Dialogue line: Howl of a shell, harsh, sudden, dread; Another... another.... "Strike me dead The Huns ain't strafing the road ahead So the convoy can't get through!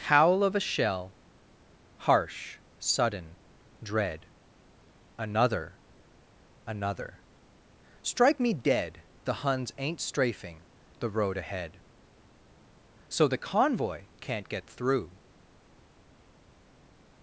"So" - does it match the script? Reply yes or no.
yes